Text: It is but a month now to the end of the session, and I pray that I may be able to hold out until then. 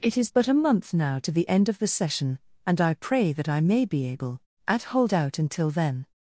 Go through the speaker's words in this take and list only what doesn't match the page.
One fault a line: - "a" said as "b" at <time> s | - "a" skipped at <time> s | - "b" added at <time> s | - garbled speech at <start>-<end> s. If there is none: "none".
- "to" said as "at" at 4.7 s